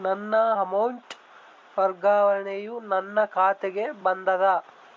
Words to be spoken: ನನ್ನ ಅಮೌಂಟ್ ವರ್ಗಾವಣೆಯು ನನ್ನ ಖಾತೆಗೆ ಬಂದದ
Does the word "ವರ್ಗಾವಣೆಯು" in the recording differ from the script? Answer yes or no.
no